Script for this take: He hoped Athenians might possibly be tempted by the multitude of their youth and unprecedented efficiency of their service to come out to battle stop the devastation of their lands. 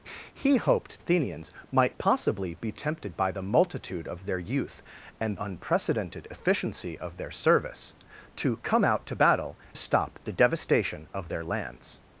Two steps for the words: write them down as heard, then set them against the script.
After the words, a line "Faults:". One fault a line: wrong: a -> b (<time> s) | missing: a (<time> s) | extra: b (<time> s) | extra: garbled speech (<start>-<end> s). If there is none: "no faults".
He hoped Athenians might possibly be tempted by the multitude of their youth and unprecedented efficiency of their service to come out to battle stop the devastation of their lands.
Faults:
no faults